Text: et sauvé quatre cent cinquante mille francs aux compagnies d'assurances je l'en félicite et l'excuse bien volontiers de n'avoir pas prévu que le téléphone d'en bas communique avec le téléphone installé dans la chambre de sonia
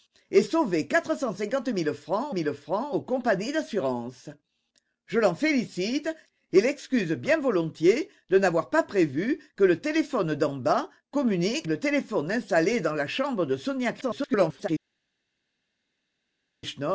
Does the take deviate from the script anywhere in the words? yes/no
yes